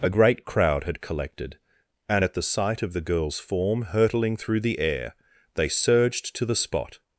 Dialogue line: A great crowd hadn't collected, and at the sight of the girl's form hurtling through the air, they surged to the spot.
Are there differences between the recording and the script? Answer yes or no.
yes